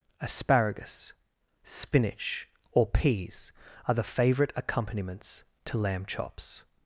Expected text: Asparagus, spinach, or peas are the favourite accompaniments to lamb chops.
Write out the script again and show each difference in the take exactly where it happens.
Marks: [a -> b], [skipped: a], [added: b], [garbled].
Asparagus, spinach, or peas are the favourite accompaniments to lamb chops.